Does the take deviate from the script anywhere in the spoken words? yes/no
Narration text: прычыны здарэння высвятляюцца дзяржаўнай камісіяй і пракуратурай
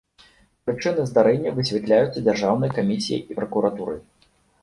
no